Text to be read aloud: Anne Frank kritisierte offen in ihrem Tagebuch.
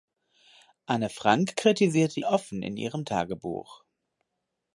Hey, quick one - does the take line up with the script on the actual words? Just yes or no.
yes